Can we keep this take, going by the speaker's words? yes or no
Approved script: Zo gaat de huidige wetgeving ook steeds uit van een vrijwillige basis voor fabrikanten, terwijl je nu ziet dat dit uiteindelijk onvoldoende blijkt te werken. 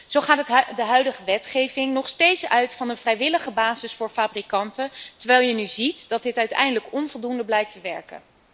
no